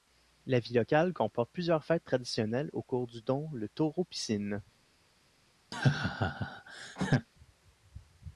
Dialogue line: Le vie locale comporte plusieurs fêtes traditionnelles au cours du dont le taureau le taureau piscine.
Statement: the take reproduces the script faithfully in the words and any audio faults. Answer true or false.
false